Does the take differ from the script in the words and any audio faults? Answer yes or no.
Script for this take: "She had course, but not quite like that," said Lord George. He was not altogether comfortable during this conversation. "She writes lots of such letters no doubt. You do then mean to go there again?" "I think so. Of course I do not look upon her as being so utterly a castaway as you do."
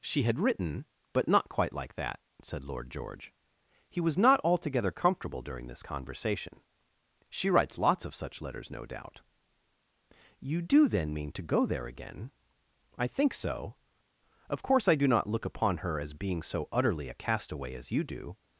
yes